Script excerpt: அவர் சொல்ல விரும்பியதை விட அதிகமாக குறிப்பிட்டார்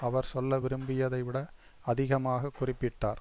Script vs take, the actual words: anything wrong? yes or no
no